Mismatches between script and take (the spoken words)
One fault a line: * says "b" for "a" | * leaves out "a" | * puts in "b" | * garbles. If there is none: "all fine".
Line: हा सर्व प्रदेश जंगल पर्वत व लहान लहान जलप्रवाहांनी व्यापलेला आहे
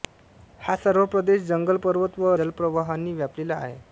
* leaves out "लहान लहान"